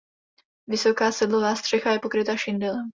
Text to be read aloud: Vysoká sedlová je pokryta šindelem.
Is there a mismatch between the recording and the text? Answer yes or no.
yes